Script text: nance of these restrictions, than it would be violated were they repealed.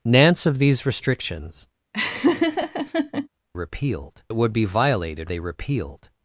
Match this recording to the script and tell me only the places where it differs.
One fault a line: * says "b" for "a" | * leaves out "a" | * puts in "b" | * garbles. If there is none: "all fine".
* says "repealed" for "than"
* leaves out "were"